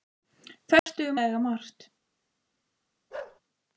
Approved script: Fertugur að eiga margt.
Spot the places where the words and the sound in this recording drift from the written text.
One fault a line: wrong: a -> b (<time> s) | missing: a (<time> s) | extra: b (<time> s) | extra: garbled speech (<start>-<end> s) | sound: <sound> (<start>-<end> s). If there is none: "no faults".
sound: dropout (0.8-0.9 s)
sound: bark (3.1-3.4 s)